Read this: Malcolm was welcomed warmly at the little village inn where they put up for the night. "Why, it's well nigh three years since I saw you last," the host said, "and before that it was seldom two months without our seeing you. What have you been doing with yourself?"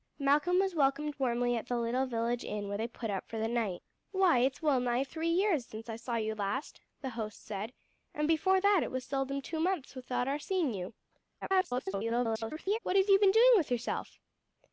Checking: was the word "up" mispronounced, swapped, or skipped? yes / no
no